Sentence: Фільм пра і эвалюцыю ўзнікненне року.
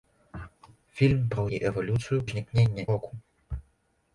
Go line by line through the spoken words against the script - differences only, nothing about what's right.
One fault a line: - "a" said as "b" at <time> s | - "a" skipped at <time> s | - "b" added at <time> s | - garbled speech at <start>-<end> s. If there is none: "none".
none